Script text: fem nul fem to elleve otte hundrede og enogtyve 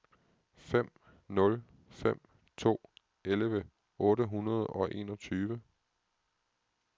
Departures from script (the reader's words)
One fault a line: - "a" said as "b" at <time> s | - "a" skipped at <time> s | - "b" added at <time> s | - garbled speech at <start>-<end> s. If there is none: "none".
none